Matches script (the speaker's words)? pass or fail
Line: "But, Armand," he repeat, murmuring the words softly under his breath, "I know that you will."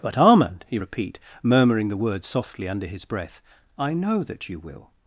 pass